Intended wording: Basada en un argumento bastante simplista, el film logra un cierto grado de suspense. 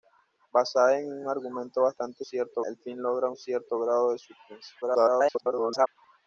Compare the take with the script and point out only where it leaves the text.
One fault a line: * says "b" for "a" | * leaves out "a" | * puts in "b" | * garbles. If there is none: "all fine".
* says "cierto" for "simplista"
* garbles